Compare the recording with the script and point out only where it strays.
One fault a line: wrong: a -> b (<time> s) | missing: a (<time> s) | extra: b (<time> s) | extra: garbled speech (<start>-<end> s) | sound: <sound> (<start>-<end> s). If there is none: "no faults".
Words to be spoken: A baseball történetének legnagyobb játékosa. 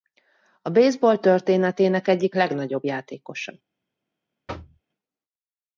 extra: egyik (2.1 s)
sound: thud (4.5-4.8 s)